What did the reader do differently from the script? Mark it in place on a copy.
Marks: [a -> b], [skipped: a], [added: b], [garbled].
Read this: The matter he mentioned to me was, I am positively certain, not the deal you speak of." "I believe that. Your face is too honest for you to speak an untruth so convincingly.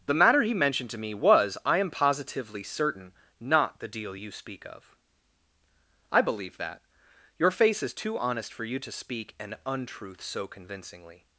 The matter he mentioned to me was, I am positively certain, not the deal you speak of." "I believe that. Your face is too honest for you to speak an untruth so convincingly.